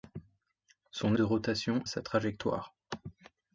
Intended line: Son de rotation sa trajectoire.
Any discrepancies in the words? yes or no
no